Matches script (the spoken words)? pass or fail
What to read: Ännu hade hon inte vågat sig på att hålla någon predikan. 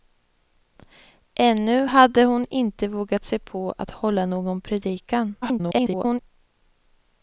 fail